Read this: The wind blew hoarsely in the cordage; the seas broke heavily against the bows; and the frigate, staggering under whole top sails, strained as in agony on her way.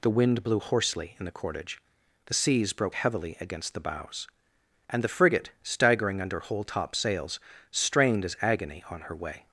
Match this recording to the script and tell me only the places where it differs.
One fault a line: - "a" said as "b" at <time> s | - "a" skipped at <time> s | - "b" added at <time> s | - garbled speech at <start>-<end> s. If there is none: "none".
- "in" skipped at 8.4 s